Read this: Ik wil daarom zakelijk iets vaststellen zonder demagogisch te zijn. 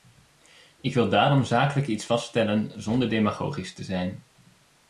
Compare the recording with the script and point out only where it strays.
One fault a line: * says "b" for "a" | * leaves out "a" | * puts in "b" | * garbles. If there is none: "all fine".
all fine